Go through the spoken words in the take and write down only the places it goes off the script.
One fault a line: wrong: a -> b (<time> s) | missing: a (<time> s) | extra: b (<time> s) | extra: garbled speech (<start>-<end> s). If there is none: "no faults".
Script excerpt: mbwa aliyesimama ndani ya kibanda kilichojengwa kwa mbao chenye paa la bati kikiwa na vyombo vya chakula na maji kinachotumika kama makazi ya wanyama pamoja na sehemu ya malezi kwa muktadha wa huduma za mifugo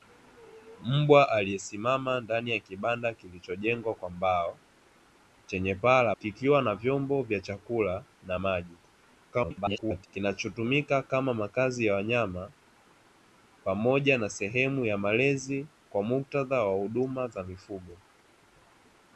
missing: bati (6.2 s)
extra: garbled speech (9.3-10.1 s)